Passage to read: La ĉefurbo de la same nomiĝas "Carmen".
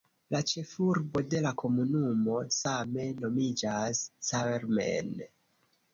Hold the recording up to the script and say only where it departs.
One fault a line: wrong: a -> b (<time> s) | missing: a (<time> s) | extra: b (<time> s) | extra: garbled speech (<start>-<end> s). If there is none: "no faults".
extra: komunumo (1.6 s)